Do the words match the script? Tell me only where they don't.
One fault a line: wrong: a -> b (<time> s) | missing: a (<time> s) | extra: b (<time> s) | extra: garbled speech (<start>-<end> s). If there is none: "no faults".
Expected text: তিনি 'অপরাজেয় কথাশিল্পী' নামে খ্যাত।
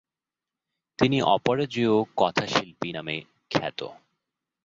no faults